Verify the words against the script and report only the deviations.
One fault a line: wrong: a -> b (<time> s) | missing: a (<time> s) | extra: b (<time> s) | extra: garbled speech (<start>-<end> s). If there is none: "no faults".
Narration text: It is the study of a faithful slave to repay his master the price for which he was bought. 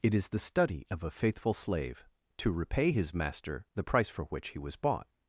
no faults